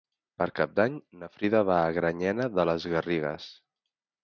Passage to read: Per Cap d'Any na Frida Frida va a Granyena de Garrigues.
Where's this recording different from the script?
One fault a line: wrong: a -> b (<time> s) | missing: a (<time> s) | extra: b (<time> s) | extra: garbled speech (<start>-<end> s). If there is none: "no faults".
missing: Frida (1.6 s)
extra: les (2.7 s)